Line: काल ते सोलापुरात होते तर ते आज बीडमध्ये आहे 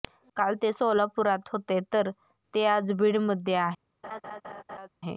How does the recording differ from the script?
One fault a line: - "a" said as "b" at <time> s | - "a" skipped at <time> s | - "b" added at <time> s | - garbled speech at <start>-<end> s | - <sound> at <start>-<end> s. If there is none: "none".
- laugh at 4.0-4.9 s